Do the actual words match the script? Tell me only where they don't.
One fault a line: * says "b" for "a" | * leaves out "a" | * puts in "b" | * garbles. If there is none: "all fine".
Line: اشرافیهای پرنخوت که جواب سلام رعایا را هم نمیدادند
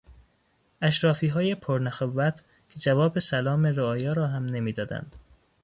all fine